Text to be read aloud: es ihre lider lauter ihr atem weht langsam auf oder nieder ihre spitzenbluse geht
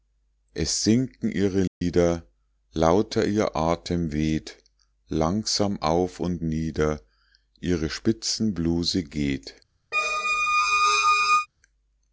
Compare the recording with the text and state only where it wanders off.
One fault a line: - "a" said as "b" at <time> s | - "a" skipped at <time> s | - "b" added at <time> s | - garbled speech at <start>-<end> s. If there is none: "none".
- "sinken" added at 0.8 s
- "oder" said as "und" at 6.2 s